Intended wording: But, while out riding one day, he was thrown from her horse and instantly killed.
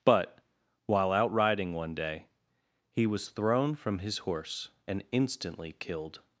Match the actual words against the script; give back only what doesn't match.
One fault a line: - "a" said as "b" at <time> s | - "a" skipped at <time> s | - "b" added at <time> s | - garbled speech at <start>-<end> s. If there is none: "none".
- "her" said as "his" at 4.0 s